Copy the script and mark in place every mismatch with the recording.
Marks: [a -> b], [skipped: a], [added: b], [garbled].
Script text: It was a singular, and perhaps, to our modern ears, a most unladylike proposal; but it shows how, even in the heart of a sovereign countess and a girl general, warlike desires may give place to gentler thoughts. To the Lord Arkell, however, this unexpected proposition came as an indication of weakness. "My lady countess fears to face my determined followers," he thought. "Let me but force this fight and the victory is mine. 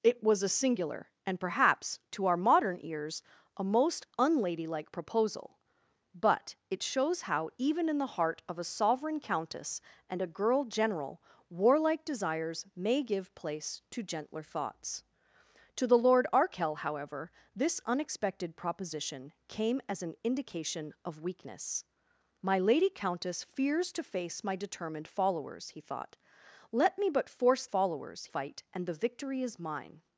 It was a singular, and perhaps, to our modern ears, a most unladylike proposal; but it shows how, even in the heart of a sovereign countess and a girl general, warlike desires may give place to gentler thoughts. To the Lord Arkell, however, this unexpected proposition came as an indication of weakness. "My lady countess fears to face my determined followers," he thought. "Let me but force [this -> followers] fight and the victory is mine.